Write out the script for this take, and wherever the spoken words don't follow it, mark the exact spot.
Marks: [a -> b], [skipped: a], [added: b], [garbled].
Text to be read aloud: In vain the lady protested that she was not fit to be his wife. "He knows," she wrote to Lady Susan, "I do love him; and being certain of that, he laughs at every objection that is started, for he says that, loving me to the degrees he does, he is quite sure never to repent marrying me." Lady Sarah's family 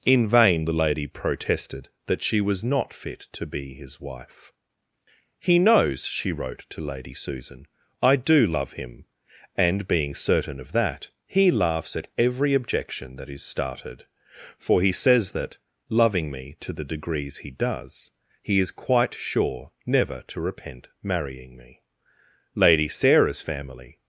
In vain the lady protested that she was not fit to be his wife. "He knows," she wrote to Lady Susan, "I do love him; and being certain of that, he laughs at every objection that is started, for he says that, loving me to the degrees he does, he is quite sure never to repent marrying me." Lady Sarah's family